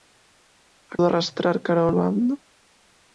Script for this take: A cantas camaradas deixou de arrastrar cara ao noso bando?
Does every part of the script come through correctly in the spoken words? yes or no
no